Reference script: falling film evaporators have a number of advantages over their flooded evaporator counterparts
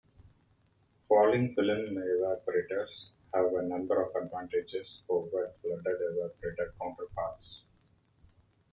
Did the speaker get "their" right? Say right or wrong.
wrong